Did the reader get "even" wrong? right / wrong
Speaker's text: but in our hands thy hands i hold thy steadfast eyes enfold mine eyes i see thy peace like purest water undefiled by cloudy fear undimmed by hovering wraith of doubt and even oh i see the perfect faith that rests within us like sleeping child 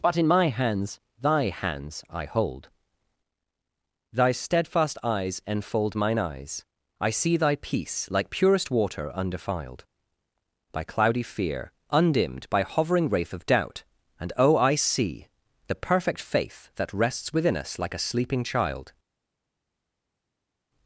wrong